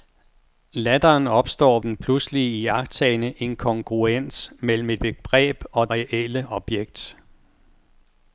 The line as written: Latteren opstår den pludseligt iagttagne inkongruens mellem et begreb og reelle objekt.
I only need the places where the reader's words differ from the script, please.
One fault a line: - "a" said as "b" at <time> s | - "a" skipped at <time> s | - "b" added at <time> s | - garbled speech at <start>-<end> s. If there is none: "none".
none